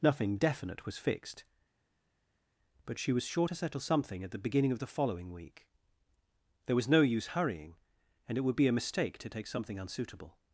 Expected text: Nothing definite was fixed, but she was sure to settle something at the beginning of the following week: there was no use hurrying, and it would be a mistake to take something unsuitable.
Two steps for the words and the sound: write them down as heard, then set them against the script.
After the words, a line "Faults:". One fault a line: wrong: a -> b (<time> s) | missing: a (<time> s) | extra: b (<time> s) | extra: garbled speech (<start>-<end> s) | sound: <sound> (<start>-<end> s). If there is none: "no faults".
Nothing definite was fixed, but she was sure to settle something at the beginning of the following week: there was no use hurrying, and it would be a mistake to take something unsuitable.
Faults:
no faults